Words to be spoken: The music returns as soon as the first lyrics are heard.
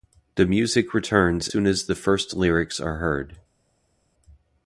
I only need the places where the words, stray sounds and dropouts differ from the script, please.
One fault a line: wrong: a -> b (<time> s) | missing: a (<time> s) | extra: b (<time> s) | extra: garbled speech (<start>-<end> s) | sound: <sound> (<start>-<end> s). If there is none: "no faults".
missing: as (1.5 s)